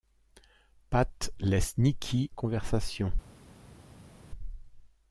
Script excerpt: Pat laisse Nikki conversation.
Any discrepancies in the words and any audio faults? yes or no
no